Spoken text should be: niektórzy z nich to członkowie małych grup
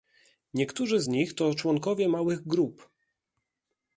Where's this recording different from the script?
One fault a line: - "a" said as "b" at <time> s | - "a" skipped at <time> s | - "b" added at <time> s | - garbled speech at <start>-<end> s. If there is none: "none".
none